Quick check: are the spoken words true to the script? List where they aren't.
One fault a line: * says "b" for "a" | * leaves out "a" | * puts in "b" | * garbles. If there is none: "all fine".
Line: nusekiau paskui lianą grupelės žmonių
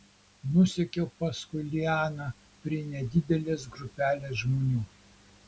* puts in "prie nedidelės"